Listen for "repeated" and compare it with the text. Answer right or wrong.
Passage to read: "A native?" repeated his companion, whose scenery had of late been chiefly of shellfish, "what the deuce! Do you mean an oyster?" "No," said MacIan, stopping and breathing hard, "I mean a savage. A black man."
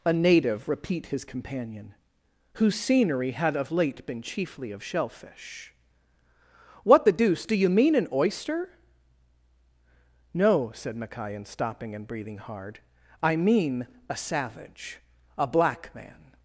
wrong